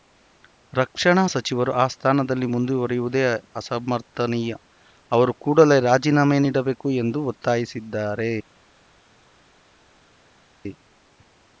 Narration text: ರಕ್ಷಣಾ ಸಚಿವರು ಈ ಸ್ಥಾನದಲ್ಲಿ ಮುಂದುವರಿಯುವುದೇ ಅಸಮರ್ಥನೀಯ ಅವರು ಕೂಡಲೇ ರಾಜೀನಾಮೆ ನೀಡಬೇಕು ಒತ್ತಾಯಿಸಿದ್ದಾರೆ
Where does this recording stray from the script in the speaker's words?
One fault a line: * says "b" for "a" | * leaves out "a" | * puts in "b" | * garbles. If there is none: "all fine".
* says "ಆ" for "ಈ"
* puts in "ಎಂದು"